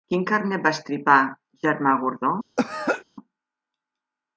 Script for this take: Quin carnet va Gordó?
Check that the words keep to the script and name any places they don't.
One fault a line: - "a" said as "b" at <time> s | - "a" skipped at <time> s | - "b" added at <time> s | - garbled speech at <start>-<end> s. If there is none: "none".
- "estripar Germà" added at 0.8 s